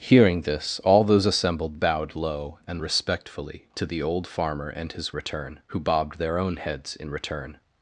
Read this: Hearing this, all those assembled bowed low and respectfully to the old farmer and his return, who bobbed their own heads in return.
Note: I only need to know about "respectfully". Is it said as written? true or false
true